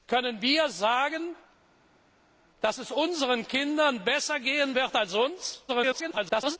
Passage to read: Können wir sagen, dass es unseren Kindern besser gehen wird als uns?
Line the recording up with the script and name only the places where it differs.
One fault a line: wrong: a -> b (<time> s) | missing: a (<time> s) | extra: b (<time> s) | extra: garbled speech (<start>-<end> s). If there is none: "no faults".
extra: garbled speech (5.7-6.6 s)